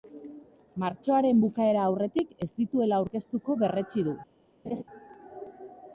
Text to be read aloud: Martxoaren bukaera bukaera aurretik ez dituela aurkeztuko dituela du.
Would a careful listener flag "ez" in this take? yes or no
no